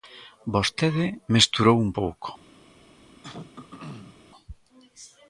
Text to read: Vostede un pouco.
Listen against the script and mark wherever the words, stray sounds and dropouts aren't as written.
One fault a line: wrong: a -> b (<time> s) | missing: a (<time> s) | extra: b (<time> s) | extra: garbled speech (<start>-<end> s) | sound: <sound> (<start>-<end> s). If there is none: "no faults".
extra: mesturou (1.3 s)
sound: throat clearing (3.2-4.2 s)